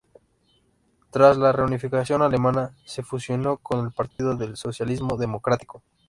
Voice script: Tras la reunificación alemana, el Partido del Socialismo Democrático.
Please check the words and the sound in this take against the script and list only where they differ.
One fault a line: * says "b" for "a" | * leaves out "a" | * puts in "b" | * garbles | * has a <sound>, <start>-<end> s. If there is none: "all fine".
* puts in "se fusionó con"
* has a dropout, 4.1-4.2 s